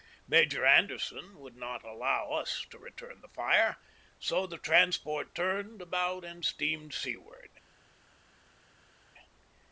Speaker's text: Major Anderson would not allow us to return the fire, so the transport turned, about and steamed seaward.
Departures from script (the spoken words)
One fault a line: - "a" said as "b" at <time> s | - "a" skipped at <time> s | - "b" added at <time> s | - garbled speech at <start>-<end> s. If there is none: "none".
none